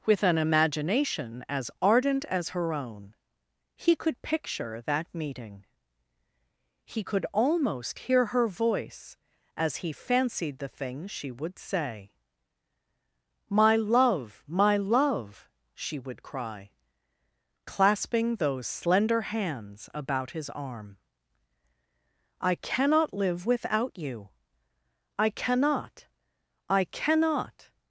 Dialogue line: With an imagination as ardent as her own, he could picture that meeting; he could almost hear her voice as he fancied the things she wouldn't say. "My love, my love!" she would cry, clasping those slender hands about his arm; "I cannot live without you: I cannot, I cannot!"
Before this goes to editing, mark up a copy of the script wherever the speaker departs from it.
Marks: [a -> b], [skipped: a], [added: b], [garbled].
With an imagination as ardent as her own, he could picture that meeting; he could almost hear her voice as he fancied the things she [wouldn't -> would] say. "My love, my love!" she would cry, clasping those slender hands about his arm; "I cannot live without you: I cannot, I cannot!"